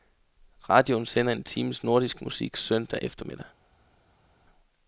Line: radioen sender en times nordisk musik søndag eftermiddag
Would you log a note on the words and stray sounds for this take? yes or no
no